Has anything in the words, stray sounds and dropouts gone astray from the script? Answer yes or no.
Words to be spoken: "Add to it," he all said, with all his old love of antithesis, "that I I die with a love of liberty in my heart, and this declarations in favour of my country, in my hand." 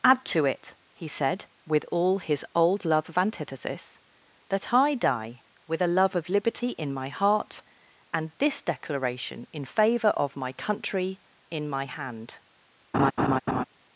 yes